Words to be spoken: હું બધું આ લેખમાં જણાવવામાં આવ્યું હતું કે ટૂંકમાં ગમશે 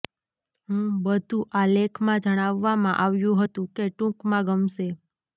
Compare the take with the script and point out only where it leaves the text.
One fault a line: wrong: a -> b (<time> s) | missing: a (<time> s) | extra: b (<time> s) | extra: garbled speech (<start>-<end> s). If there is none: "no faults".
no faults